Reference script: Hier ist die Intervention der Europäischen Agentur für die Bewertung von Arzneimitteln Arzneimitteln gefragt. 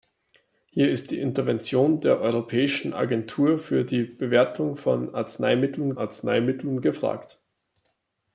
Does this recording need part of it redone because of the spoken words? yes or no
no